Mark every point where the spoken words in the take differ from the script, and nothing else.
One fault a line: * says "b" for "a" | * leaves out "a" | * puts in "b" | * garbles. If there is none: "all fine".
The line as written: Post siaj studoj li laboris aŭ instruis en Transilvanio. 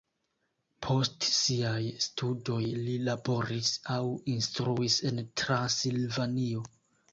all fine